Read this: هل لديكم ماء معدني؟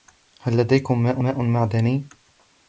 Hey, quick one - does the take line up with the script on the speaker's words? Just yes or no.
no